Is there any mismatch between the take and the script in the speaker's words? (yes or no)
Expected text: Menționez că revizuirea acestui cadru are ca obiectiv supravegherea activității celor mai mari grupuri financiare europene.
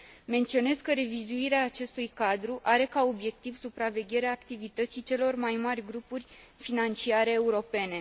no